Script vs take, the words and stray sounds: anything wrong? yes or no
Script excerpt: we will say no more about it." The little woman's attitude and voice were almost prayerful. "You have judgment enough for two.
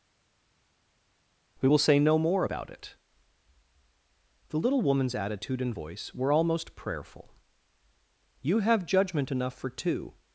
no